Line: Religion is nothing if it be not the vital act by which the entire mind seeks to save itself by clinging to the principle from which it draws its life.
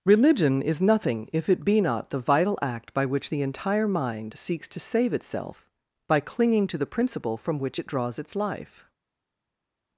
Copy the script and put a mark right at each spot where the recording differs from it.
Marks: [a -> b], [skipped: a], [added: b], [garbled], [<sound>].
Religion is nothing if it be not the vital act by which the entire mind seeks to save itself by clinging to the principle from which it draws its life.